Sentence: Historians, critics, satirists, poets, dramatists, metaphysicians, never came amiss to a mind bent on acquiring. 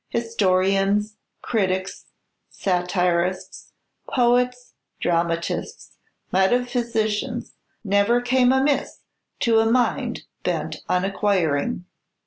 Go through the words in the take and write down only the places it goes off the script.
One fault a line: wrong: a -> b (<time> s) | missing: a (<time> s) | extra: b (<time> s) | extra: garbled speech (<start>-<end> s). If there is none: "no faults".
no faults